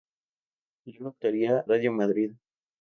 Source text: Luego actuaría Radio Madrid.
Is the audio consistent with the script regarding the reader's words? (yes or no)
yes